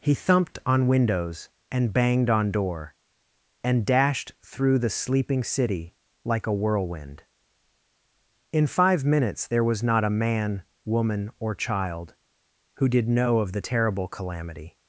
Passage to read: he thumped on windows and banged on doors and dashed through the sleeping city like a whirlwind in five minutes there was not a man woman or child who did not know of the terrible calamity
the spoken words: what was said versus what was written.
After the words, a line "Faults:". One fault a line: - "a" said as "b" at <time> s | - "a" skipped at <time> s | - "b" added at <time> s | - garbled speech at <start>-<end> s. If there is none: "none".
he thumped on windows and banged on door and dashed through the sleeping city like a whirlwind in five minutes there was not a man woman or child who did know of the terrible calamity
Faults:
- "doors" said as "door" at 2.5 s
- "not" skipped at 13.1 s